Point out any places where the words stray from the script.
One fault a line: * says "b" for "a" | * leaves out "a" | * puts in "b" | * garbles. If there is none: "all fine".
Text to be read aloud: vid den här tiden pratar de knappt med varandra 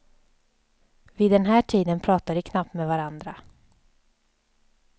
all fine